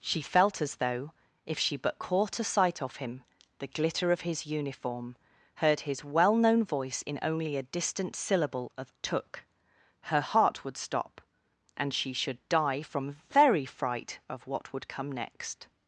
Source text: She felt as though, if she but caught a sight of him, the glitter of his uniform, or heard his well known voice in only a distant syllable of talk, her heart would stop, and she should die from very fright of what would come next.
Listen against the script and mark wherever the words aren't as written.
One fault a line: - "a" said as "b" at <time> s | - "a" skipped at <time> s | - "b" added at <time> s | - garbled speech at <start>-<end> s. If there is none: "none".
- "or" skipped at 5.2 s
- "talk" said as "took" at 9.0 s